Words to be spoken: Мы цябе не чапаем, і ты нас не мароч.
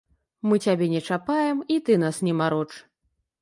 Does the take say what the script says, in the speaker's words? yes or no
yes